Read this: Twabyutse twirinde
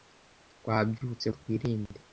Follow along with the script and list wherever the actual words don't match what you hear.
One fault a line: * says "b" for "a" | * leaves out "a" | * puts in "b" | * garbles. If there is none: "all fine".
all fine